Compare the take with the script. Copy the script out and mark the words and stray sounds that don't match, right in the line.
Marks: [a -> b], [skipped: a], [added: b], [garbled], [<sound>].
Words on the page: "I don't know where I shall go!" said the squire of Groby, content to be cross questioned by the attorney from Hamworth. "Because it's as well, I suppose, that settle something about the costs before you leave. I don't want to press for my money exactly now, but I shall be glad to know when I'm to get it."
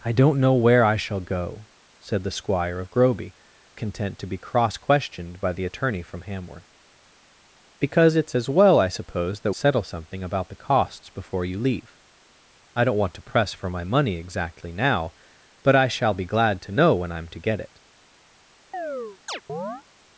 "I don't know where I shall go!" said the squire of Groby, content to be cross questioned by the attorney from Hamworth. "Because it's as well, I suppose, that settle something about the costs before you leave. I don't want to press for my money exactly now, but I shall be glad to know when I'm to get it." [chirp]